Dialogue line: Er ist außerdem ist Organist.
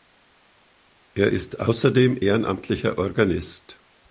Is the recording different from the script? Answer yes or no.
yes